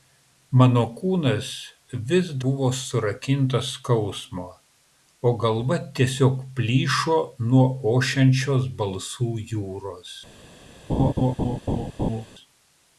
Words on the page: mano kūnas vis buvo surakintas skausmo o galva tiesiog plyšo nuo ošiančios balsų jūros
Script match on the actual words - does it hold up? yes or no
yes